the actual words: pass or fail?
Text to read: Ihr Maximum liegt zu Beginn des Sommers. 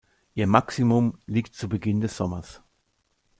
pass